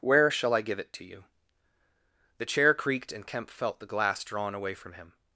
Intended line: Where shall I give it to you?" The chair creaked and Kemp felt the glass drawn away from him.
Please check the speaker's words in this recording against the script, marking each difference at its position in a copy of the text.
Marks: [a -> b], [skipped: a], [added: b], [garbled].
Where shall I give it to you?" The chair creaked and Kemp felt the glass drawn away from him.